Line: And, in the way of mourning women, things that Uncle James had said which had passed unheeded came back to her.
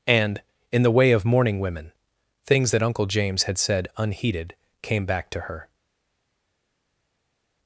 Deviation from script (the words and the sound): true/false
true